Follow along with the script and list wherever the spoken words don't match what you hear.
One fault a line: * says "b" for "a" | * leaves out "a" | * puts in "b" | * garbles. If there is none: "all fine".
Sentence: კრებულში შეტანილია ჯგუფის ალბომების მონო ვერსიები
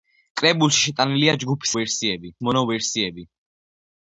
* says "ვერსიები" for "ალბომების"